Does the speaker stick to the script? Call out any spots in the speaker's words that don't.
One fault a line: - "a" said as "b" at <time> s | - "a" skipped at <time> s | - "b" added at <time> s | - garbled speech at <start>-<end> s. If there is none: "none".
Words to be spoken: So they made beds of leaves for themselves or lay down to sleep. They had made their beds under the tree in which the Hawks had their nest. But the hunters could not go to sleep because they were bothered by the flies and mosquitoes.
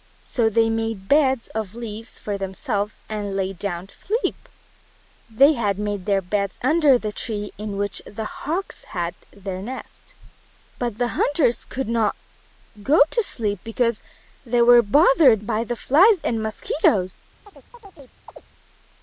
- "or" said as "and" at 3.1 s